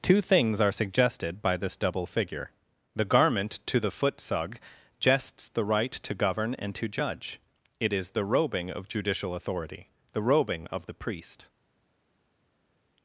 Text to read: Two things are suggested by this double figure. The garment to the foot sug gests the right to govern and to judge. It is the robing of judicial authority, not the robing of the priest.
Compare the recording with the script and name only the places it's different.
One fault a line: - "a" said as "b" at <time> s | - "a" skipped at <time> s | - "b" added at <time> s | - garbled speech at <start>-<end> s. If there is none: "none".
- "not" skipped at 9.9 s